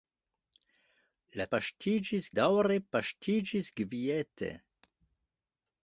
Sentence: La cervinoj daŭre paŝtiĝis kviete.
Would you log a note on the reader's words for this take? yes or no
yes